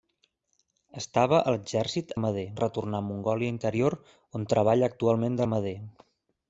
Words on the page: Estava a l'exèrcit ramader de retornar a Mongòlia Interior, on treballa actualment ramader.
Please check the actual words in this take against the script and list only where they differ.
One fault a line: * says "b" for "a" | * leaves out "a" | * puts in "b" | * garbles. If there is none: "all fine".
all fine